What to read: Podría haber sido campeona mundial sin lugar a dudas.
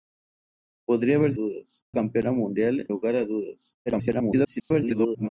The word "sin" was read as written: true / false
false